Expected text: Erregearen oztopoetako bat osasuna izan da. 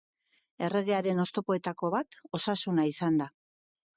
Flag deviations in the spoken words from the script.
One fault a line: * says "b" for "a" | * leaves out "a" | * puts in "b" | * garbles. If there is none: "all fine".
all fine